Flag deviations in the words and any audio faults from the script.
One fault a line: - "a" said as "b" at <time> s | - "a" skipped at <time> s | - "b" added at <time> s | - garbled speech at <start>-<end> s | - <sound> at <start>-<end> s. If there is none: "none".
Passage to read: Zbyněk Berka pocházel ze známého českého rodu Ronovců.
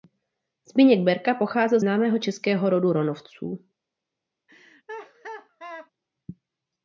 - "ze" skipped at 1.8 s
- laugh at 4.5-5.9 s